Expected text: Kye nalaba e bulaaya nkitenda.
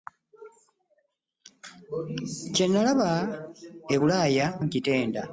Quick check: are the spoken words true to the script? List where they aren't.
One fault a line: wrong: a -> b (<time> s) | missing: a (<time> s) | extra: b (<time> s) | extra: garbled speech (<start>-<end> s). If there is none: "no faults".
no faults